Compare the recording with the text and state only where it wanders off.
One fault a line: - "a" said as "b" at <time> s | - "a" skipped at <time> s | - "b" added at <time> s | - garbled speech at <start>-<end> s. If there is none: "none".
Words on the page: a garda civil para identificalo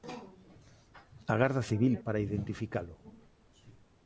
none